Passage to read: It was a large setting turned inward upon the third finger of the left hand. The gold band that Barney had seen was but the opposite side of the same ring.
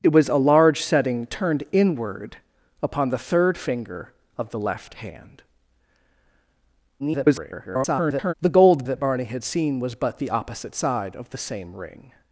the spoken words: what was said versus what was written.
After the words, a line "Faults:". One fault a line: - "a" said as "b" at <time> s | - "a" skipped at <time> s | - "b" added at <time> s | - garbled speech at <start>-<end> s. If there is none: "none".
It was a large setting turned inward upon the third finger of the left hand. [garbled] The gold that Barney had seen was but the opposite side of the same ring.
Faults:
- garbled speech at 7.0-8.3 s
- "band" skipped at 8.8 s